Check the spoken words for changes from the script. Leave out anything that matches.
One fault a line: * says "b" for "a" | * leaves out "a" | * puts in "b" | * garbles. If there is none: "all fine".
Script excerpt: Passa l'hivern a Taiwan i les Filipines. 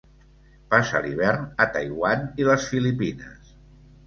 all fine